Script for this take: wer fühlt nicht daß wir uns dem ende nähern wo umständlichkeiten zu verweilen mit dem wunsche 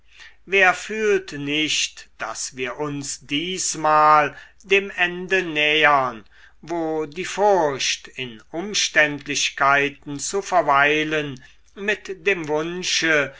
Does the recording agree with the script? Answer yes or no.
no